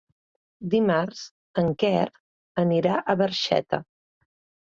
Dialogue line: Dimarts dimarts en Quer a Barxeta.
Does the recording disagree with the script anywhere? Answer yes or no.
yes